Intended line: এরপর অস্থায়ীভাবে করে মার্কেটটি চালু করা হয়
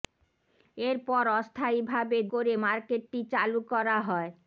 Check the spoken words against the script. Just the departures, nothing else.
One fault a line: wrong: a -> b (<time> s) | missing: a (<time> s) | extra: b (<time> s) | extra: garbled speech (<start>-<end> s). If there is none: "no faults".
no faults